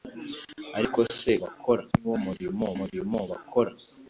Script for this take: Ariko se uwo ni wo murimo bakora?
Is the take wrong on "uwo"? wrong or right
wrong